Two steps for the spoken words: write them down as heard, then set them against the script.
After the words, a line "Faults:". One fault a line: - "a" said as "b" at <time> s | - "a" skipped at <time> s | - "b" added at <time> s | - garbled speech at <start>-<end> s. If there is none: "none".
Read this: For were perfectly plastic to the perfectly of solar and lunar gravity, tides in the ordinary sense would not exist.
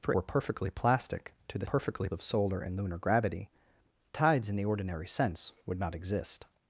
For were perfectly plastic to the perfectly of solar and lunar gravity, tides in the ordinary sense would not exist.
Faults:
none